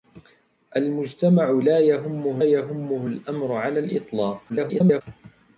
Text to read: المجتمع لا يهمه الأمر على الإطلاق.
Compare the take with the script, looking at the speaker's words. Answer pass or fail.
fail